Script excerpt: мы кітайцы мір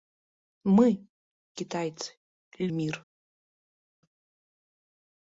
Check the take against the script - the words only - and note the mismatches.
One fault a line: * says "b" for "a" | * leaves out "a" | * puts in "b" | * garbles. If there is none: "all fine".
all fine